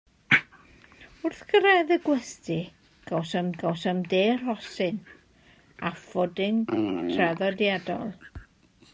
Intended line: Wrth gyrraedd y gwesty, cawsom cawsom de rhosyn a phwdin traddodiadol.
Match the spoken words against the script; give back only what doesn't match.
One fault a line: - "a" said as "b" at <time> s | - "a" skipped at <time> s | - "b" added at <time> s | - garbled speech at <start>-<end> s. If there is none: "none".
none